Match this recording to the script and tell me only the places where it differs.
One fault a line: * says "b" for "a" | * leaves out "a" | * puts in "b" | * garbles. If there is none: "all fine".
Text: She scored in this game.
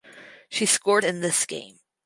all fine